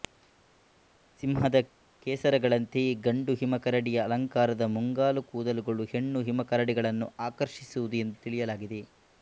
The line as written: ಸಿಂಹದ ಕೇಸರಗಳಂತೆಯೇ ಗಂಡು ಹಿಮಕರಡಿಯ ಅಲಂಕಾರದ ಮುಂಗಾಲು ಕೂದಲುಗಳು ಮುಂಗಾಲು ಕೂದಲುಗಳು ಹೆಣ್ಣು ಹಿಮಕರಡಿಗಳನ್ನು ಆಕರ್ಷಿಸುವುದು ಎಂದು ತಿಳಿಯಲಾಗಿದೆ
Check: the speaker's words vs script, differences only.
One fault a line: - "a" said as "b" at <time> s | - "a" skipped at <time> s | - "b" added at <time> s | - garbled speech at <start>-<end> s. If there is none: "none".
- "ಮುಂಗಾಲು ಕೂದಲುಗಳು" skipped at 5.8 s